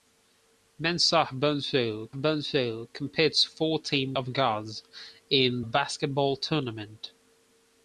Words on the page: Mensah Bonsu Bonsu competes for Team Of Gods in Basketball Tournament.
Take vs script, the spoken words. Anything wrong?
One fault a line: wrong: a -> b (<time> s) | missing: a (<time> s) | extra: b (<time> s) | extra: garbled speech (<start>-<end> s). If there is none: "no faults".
no faults